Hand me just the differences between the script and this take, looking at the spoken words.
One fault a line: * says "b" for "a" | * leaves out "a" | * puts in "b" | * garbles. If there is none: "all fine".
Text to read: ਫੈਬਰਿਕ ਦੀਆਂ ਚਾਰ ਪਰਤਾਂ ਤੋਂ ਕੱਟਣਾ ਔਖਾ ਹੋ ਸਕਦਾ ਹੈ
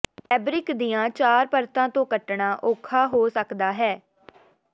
all fine